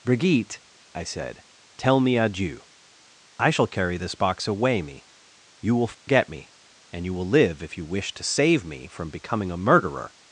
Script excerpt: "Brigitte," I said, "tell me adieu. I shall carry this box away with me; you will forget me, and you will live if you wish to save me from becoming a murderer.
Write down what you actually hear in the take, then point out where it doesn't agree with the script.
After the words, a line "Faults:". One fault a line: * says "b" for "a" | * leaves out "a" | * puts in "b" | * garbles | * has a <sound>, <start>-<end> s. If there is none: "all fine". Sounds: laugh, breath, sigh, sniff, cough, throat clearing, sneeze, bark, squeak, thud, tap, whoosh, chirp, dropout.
"Brigitte," I said, "tell me adieu. I shall carry this box away me; you will forget me, and you will live if you wish to save me from becoming a murderer.
Faults:
* leaves out "with"
* has a dropout, 5.9-6.1 s